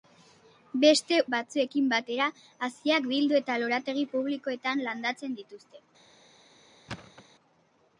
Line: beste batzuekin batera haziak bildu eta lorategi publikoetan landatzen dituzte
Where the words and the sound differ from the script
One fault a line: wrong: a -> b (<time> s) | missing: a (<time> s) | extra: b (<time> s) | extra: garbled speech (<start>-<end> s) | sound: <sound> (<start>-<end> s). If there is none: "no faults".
sound: thud (6.9-7.2 s)